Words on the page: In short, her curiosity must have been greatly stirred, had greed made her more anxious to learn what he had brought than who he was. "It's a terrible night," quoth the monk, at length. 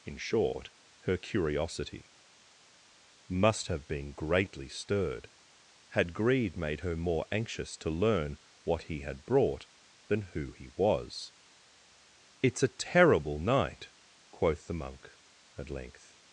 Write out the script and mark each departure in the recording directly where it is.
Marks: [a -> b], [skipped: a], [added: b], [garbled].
In short, her curiosity must have been greatly stirred, had greed made her more anxious to learn what he had brought than who he was. "It's a terrible night," quoth the monk, at length.